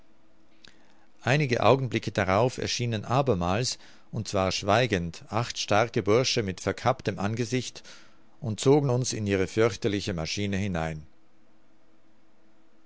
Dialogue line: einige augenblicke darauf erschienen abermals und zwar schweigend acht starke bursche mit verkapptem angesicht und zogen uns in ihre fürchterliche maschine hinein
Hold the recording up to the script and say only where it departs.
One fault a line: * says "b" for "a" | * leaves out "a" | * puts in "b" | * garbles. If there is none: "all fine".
all fine